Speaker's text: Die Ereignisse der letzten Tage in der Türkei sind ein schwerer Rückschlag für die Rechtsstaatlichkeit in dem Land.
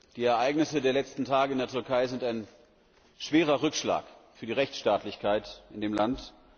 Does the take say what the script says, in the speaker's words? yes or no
yes